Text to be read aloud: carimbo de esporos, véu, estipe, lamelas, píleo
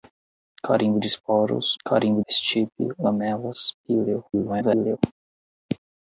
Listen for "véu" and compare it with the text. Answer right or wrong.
wrong